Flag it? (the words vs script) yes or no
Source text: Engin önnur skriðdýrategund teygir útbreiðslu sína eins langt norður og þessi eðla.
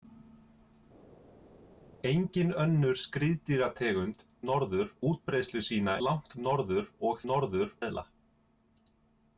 yes